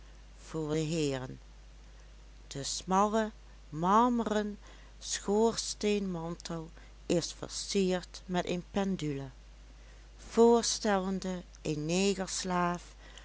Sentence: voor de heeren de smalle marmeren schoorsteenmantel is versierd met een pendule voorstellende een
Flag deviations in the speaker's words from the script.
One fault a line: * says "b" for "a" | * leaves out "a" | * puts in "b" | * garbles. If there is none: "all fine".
all fine